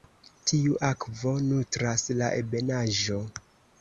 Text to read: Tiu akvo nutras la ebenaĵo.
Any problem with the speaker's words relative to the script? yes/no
no